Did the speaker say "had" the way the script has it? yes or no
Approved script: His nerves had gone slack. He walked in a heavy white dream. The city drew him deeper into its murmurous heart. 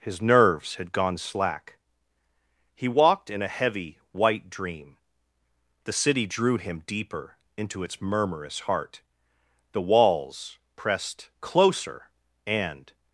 yes